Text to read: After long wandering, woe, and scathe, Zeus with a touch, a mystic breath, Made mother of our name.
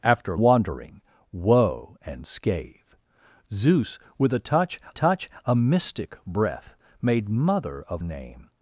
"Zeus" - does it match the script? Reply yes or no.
yes